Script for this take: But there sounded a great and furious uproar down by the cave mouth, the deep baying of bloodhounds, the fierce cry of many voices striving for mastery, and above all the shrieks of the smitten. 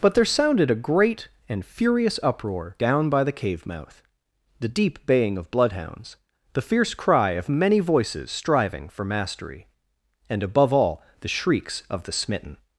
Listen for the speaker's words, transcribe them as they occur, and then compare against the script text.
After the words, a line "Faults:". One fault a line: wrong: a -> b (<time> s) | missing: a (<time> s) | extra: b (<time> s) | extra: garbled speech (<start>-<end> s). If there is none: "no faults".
But there sounded a great and furious uproar down by the cave mouth, the deep baying of bloodhounds, the fierce cry of many voices striving for mastery, and above all the shrieks of the smitten.
Faults:
no faults